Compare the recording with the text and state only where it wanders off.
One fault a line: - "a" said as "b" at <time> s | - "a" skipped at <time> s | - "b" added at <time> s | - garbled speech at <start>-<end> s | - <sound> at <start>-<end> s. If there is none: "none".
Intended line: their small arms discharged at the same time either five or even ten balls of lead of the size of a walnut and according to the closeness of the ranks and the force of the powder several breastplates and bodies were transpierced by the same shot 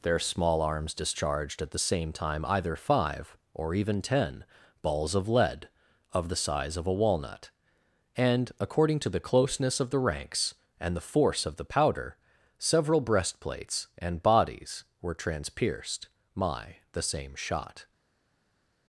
- "by" said as "my" at 16.3 s